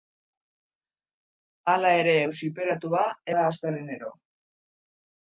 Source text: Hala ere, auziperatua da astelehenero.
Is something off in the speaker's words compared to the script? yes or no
no